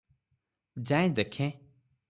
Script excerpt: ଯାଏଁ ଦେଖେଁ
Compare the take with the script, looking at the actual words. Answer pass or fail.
pass